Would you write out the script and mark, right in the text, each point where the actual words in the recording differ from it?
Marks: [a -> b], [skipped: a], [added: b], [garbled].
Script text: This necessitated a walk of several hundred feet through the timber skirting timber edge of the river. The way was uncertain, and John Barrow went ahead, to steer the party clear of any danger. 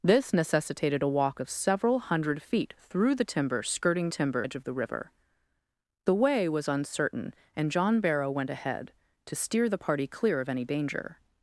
This necessitated a walk of several hundred feet through the timber skirting timber edge of the river. The way was uncertain, and John Barrow went ahead, to steer the party clear of any danger.